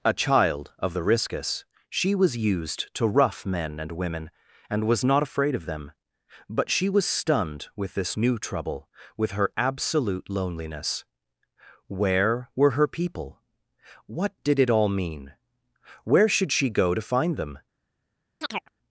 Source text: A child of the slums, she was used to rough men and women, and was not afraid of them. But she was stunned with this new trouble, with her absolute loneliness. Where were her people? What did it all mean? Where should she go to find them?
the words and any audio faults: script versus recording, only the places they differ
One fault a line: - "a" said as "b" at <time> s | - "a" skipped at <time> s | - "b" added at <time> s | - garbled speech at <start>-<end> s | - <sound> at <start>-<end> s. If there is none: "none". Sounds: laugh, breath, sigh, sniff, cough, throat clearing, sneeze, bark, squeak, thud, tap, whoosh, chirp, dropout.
- "slums" said as "riscus" at 1.0 s
- chirp at 18.4-18.7 s